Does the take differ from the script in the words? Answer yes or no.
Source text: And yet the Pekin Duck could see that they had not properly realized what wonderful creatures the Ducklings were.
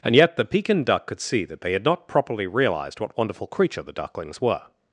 yes